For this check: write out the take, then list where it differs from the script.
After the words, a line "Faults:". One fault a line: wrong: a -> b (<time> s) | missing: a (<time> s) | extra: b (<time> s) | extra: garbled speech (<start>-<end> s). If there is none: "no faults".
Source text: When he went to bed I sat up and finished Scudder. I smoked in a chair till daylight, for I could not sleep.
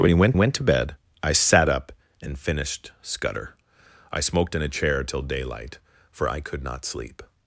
When he went went to bed I sat up and finished Scudder. I smoked in a chair till daylight, for I could not sleep.
Faults:
extra: went (0.3 s)